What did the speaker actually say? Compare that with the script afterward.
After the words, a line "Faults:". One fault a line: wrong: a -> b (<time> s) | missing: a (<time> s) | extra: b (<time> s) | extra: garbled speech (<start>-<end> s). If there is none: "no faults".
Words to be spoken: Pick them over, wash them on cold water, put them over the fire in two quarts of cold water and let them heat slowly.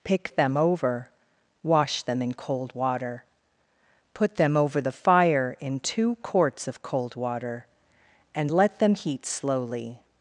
Pick them over, wash them in cold water, put them over the fire in two quarts of cold water and let them heat slowly.
Faults:
wrong: on -> in (2.2 s)